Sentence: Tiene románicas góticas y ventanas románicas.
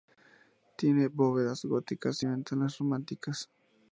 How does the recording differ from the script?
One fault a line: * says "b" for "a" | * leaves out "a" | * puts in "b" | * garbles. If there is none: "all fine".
* says "bóvedas" for "románicas"